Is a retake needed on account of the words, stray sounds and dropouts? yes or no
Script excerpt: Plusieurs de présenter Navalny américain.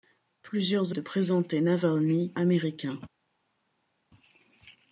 no